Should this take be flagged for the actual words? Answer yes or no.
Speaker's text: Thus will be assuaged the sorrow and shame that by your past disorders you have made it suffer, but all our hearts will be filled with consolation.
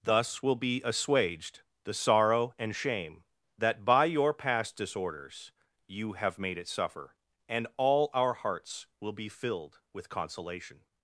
yes